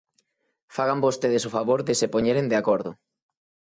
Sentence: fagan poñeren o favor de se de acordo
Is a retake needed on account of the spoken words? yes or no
yes